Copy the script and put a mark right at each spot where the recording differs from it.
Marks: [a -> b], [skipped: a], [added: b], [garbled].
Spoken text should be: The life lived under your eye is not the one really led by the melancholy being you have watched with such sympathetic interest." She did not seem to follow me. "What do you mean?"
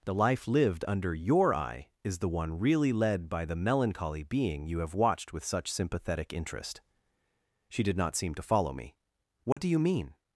The life lived under your eye is [skipped: not] the one really led by the melancholy being you have watched with such sympathetic interest." She did not seem to follow me. "What do you mean?"